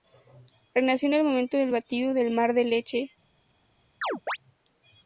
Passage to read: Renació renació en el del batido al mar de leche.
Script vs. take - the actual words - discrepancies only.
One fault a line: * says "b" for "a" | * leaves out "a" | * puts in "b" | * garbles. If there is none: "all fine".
* leaves out "renació"
* puts in "momento"
* says "del" for "al"